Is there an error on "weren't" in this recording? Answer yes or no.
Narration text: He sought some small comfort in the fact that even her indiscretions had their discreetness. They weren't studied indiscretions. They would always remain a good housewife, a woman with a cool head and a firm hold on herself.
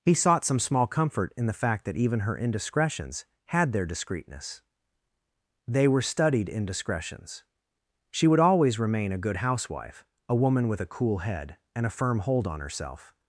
yes